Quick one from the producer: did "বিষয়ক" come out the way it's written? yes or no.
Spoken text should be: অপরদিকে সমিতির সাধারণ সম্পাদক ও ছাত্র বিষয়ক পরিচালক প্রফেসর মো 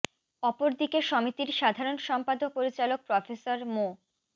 no